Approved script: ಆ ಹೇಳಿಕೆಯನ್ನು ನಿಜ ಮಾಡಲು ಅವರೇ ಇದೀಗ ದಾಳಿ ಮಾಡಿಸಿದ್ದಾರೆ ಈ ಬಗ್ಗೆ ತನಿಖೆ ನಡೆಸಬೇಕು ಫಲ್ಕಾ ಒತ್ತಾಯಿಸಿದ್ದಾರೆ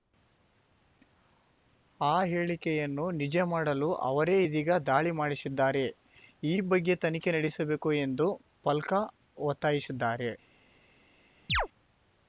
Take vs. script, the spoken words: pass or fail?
fail